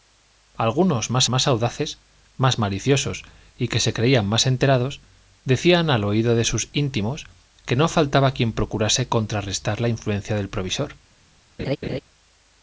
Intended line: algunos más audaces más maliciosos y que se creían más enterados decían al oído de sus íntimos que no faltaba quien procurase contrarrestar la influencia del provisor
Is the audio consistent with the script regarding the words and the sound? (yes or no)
no